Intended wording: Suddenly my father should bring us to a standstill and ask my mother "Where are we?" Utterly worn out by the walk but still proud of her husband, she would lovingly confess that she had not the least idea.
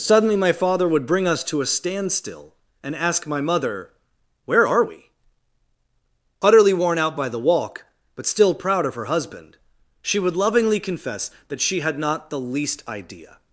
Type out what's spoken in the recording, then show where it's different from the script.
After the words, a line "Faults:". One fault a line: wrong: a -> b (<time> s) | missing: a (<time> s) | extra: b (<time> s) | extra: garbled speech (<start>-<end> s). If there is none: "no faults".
Suddenly my father would bring us to a standstill and ask my mother "Where are we?" Utterly worn out by the walk but still proud of her husband, she would lovingly confess that she had not the least idea.
Faults:
wrong: should -> would (0.9 s)